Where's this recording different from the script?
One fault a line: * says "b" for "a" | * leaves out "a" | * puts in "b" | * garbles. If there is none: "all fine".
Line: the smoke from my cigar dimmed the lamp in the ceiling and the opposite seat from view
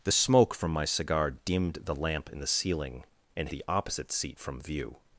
all fine